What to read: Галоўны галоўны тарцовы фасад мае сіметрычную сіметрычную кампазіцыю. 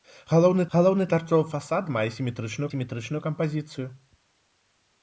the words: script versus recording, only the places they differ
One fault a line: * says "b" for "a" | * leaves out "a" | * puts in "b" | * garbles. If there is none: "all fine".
all fine